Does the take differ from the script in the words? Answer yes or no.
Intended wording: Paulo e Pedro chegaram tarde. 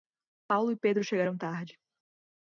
no